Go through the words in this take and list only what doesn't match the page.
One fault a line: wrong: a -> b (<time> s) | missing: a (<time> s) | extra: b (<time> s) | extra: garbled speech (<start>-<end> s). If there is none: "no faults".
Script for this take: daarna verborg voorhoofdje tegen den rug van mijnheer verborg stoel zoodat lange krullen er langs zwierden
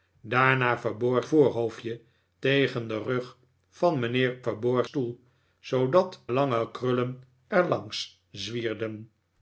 no faults